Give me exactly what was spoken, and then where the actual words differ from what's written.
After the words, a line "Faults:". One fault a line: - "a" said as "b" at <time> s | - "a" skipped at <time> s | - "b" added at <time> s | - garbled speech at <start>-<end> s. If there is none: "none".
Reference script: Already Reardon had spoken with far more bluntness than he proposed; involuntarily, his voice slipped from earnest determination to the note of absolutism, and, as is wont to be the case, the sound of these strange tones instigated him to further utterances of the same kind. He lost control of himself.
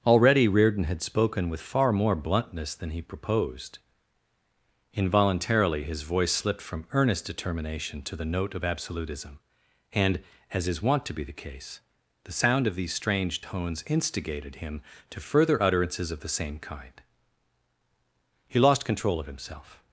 Already Reardon had spoken with far more bluntness than he proposed; involuntarily, his voice slipped from earnest determination to the note of absolutism, and, as is wont to be the case, the sound of these strange tones instigated him to further utterances of the same kind. He lost control of himself.
Faults:
none